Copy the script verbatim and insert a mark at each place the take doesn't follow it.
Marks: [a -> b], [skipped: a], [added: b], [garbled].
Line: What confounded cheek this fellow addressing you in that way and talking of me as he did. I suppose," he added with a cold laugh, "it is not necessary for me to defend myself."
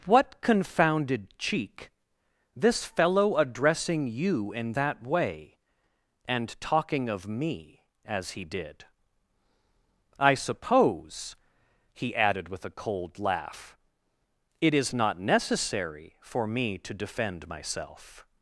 What confounded cheek this fellow addressing you in that way and talking of me as he did. I suppose," he added with a cold laugh, "it is not necessary for me to defend myself."